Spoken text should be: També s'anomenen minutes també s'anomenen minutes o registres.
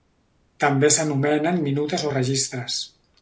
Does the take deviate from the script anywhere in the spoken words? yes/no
yes